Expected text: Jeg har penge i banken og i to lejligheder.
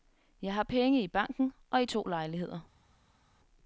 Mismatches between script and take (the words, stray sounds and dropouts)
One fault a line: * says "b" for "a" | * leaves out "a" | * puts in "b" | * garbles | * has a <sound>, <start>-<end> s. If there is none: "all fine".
all fine